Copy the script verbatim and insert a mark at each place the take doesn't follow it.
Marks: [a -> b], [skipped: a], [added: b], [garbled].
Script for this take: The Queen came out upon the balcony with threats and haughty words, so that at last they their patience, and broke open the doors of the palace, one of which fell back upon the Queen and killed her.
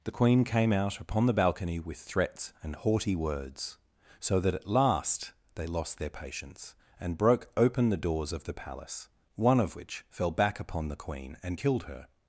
The Queen came out upon the balcony with threats and haughty words, so that at last they [added: lost] their patience, and broke open the doors of the palace, one of which fell back upon the Queen and killed her.